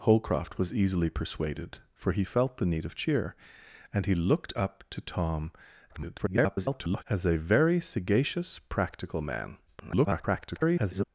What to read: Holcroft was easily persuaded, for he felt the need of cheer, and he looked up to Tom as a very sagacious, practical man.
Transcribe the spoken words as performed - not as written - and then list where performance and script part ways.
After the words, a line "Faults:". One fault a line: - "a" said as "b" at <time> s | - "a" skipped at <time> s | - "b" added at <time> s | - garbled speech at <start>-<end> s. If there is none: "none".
Holcroft was easily persuaded, for he felt the need of cheer, and he looked up to Tom [garbled] as a very sagacious, practical man. [garbled]
Faults:
- garbled speech at 5.9-7.0 s
- garbled speech at 9.7-11.1 s